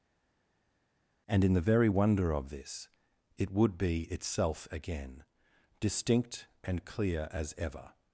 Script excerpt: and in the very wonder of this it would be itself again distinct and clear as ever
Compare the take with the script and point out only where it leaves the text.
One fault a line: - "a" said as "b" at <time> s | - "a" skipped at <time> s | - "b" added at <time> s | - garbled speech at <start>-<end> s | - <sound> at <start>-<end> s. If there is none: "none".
none